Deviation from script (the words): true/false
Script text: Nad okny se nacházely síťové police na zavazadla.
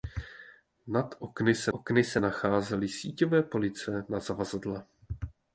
true